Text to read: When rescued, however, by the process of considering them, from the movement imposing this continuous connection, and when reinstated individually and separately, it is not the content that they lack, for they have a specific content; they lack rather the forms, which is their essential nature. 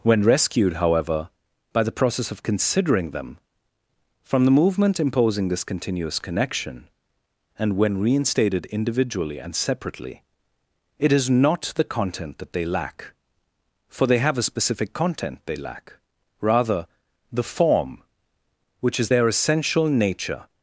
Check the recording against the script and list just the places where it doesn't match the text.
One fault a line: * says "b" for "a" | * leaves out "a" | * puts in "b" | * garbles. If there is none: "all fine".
* says "form" for "forms"